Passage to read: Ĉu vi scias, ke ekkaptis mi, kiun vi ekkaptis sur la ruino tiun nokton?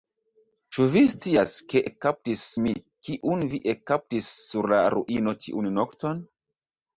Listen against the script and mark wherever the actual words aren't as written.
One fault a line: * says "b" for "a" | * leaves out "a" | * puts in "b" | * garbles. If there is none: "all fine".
all fine